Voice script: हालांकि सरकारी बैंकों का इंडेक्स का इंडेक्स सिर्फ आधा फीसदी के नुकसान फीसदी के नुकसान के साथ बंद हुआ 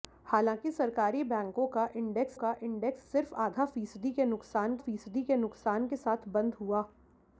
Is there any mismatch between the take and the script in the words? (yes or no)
no